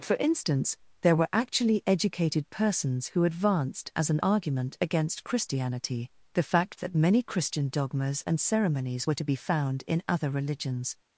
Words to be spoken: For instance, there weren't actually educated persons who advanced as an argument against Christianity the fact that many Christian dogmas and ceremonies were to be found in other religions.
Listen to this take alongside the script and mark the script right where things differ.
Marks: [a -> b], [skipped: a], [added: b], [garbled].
For instance, there [weren't -> were] actually educated persons who advanced as an argument against Christianity the fact that many Christian dogmas and ceremonies were to be found in other religions.